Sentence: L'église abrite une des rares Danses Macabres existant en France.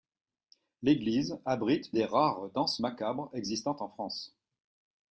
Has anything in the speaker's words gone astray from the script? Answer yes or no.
yes